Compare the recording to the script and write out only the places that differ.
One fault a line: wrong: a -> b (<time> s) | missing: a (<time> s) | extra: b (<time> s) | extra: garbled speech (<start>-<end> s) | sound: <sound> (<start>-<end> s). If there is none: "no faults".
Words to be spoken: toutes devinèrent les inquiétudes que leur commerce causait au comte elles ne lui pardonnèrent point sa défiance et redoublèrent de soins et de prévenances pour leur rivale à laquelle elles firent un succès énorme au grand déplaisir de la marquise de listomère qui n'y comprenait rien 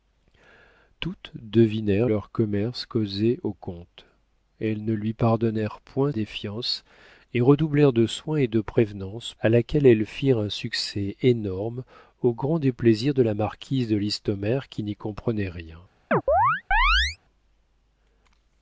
missing: les inquiétudes que (2.1 s)
missing: sa (6.1 s)
missing: pour leur rivale (9.3 s)
sound: chirp (16.1-17.2 s)